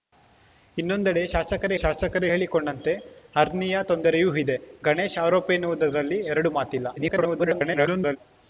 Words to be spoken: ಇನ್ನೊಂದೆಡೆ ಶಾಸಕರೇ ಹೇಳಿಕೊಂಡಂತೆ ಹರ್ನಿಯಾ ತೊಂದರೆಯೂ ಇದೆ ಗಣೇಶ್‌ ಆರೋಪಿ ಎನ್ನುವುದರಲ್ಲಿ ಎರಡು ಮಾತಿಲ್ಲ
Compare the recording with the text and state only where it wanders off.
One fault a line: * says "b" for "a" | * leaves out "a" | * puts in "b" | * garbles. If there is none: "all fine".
* puts in "ಶಾಸಕರೇ"
* garbles